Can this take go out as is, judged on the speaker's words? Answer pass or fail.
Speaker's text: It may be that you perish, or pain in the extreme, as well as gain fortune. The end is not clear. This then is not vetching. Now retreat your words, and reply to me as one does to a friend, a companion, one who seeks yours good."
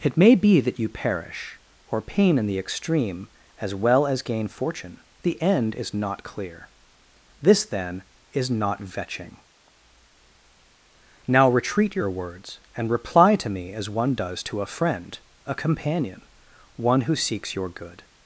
fail